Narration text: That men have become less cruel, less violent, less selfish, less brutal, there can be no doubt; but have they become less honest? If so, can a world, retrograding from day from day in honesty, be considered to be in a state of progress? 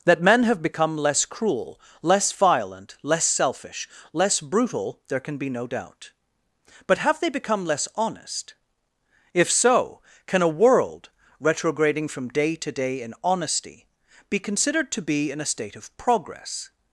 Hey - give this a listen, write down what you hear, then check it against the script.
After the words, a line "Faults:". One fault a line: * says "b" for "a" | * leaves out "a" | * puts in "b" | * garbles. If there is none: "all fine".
That men have become less cruel, less violent, less selfish, less brutal, there can be no doubt; but have they become less honest? If so, can a world, retrograding from day to day in honesty, be considered to be in a state of progress?
Faults:
* says "to" for "from"